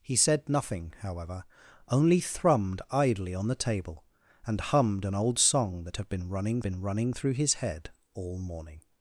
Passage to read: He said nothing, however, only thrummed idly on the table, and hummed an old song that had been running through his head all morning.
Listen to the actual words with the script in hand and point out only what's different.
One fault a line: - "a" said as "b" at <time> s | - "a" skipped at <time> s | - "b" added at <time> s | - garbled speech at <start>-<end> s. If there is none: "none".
- "been running" added at 6.6 s